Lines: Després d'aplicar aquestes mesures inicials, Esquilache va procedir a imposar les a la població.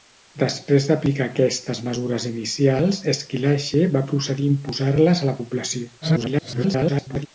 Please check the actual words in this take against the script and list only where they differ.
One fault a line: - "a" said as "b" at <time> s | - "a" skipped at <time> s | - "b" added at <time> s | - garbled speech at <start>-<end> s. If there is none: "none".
- garbled speech at 6.0-7.3 s